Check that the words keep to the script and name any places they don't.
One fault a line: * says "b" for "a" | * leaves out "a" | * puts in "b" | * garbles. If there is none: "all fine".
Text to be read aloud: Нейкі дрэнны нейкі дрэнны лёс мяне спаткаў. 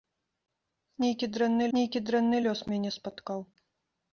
all fine